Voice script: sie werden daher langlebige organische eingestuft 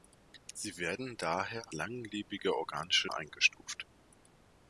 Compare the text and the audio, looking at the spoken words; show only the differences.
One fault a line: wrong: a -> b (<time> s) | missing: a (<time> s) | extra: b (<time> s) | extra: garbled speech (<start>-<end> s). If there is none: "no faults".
no faults